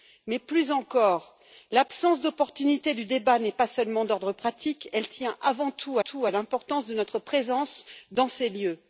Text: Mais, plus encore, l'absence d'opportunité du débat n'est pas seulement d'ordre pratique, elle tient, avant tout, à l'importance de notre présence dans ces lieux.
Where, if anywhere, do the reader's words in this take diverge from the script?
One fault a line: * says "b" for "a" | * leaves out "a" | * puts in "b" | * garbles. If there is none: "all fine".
* puts in "tout"